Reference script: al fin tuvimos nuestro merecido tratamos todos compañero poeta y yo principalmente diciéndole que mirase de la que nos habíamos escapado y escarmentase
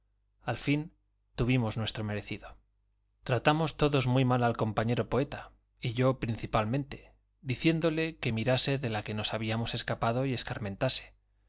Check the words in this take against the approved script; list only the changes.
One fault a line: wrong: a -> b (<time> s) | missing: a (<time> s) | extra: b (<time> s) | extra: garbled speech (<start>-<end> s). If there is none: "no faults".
extra: muy mal al (4.1 s)